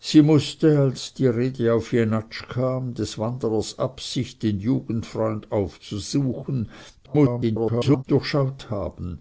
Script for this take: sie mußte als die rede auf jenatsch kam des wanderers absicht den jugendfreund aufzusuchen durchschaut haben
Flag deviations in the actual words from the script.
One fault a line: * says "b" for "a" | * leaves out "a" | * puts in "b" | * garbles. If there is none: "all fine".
* garbles